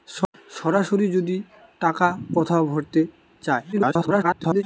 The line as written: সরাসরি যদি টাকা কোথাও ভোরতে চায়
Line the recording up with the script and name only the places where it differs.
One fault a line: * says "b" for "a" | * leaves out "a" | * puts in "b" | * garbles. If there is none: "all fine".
* garbles